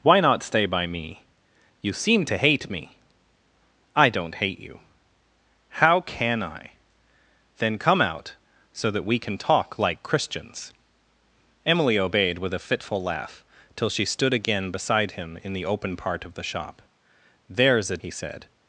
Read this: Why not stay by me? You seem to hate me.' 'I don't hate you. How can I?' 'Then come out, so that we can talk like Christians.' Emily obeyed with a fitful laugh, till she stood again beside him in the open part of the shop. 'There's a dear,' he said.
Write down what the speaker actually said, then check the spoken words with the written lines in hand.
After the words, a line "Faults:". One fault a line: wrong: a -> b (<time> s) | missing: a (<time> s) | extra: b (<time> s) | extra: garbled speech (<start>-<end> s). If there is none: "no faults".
Why not stay by me? You seem to hate me.' 'I don't hate you. How can I?' 'Then come out, so that we can talk like Christians.' Emily obeyed with a fitful laugh, till she stood again beside him in the open part of the shop. 'There's a,' he said.
Faults:
missing: dear (18.0 s)